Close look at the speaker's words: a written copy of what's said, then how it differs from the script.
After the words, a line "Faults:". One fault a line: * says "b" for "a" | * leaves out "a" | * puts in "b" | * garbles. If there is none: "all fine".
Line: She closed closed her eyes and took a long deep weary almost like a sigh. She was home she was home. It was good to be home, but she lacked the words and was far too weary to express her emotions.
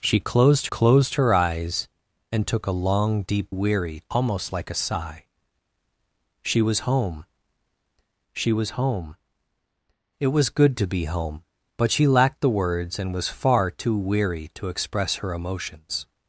She closed closed her eyes and took a long deep weary almost like a sigh. She was home she was home. It was good to be home, but she lacked the words and was far too weary to express her emotions.
Faults:
all fine